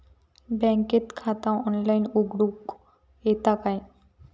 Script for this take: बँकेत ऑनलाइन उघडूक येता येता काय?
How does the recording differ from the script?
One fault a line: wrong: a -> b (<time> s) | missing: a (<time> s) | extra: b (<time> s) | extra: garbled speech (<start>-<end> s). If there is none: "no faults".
extra: खाता (1.2 s)
missing: येता (3.5 s)